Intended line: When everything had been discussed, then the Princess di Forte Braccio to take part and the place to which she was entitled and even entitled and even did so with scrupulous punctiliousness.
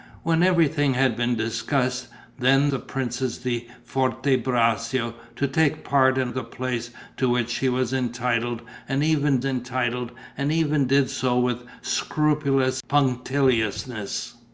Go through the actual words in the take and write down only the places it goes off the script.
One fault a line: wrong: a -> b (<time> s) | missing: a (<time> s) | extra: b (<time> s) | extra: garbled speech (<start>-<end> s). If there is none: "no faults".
no faults